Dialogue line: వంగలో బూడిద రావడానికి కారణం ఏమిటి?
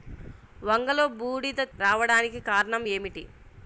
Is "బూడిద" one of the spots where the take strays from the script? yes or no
no